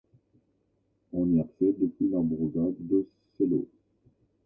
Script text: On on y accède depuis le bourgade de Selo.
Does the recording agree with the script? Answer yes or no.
no